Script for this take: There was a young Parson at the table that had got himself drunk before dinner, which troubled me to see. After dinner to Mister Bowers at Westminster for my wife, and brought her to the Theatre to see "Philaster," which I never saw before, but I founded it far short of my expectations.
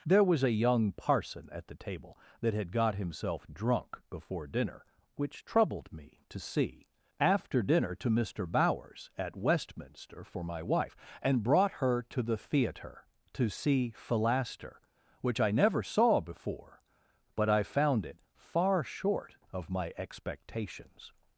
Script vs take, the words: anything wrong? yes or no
yes